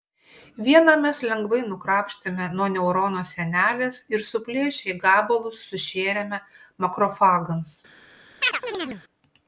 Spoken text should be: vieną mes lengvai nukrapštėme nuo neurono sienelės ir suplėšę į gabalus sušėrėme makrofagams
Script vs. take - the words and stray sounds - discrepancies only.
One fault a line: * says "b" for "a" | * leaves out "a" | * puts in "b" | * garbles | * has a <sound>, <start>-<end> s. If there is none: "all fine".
* has a chirp, 8.4-9.0 s